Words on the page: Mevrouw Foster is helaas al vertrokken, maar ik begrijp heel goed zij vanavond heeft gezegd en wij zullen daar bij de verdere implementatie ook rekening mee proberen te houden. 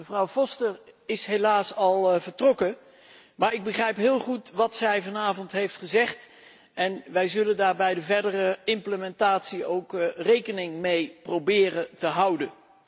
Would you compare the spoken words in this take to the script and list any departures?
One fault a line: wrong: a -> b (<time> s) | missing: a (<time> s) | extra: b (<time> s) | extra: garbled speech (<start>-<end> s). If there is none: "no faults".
extra: wat (4.5 s)